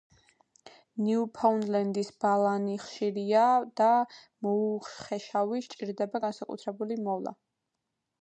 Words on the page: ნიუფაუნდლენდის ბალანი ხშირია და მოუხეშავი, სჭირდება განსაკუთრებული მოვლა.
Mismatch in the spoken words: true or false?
false